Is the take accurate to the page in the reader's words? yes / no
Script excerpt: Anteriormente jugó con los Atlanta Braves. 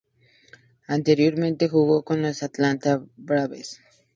yes